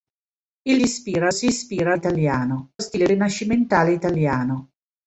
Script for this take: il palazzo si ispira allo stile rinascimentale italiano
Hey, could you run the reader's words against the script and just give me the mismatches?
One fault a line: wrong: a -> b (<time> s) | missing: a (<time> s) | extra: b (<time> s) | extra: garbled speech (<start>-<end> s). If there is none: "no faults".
wrong: palazzo -> ispira (0.8 s)
wrong: allo -> italiano (1.9 s)